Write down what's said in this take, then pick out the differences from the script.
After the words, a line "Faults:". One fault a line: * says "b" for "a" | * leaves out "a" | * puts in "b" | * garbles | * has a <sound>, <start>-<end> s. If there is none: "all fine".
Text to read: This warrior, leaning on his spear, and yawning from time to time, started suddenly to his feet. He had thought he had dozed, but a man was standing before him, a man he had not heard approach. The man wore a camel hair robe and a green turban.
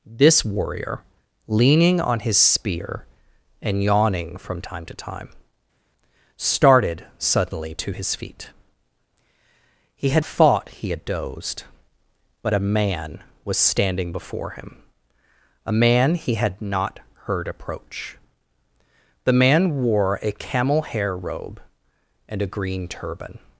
This warrior, leaning on his spear, and yawning from time to time, started suddenly to his feet. He had thought he had dozed, but a man was standing before him, a man he had not heard approach. The man wore a camel hair robe and a green turban.
Faults:
all fine